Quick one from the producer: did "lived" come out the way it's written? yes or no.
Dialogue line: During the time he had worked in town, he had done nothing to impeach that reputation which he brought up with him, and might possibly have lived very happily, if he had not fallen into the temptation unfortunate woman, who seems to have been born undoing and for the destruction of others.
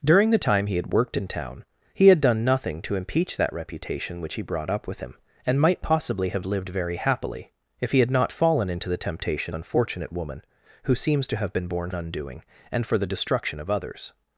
yes